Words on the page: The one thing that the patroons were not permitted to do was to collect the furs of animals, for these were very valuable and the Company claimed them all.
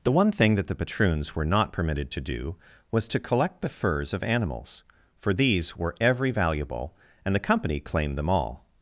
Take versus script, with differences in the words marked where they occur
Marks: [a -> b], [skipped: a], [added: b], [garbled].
The one thing that the patroons were not permitted to do was to collect the furs of animals, for these were [very -> every] valuable and the Company claimed them all.